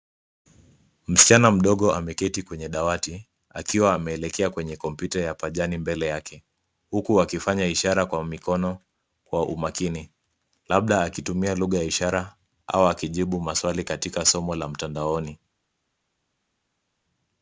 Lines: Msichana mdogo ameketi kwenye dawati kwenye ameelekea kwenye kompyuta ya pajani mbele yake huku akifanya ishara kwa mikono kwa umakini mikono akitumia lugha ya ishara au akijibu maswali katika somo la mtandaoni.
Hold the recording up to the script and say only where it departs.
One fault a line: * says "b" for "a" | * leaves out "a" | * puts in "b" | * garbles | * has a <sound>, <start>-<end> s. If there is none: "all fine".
* says "akiwa" for "kwenye"
* says "labda" for "mikono"